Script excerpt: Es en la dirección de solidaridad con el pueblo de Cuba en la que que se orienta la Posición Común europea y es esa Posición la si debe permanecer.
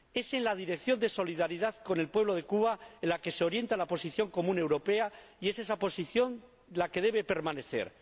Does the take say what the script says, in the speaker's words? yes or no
no